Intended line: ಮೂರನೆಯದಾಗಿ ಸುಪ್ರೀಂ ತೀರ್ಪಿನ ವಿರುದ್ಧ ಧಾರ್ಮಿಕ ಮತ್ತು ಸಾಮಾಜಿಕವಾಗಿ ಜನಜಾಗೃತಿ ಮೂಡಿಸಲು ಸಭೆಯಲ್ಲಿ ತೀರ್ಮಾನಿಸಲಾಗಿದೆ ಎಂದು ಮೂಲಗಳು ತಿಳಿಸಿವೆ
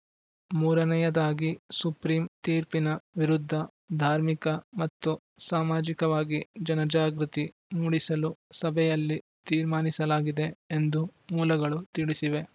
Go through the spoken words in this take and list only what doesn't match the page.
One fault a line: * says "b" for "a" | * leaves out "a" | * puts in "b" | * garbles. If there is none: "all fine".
all fine